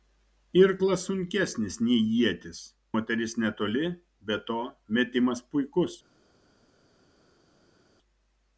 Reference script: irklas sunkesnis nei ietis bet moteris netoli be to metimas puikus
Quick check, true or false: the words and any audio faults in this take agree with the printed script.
false